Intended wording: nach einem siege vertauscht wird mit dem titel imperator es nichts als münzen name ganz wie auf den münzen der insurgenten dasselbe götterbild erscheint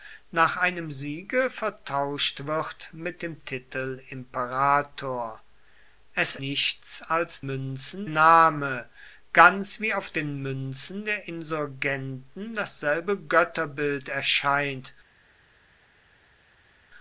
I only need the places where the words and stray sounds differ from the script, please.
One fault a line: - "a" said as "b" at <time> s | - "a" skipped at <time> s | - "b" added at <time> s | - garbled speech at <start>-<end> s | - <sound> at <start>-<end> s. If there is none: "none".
none